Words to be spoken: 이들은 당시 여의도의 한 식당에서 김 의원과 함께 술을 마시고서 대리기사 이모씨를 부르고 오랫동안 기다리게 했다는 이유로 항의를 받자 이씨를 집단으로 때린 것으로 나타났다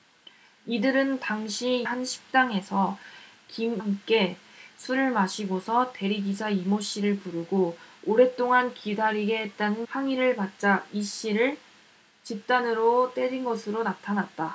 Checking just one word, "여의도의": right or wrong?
wrong